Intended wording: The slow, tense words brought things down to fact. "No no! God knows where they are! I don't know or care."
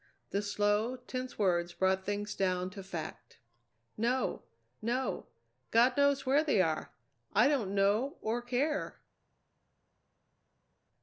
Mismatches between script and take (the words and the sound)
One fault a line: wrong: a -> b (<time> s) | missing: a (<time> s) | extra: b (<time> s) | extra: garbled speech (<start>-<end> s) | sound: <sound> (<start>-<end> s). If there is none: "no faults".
no faults